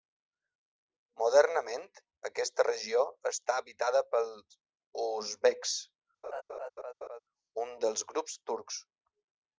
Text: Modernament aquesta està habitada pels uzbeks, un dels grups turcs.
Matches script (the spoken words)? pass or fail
fail